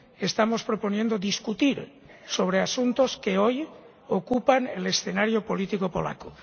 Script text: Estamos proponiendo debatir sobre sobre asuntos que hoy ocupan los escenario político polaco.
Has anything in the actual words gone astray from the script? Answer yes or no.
yes